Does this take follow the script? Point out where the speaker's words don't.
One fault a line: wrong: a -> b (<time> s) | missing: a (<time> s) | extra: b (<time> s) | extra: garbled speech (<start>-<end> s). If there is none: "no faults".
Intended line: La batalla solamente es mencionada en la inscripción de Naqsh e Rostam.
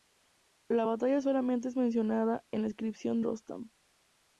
missing: de Naqsh e (3.2 s)